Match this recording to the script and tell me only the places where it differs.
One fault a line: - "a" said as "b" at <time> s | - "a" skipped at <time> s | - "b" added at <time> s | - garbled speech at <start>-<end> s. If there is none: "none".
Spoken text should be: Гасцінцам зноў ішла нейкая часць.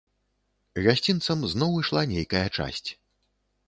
none